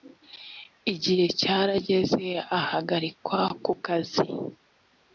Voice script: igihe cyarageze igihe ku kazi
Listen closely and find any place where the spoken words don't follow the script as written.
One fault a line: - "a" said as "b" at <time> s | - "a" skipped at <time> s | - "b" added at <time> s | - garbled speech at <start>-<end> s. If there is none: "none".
- "igihe" said as "ahagarikwa" at 2.6 s